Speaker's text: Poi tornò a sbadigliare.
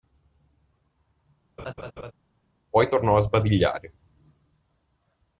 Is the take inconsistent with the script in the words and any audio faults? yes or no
yes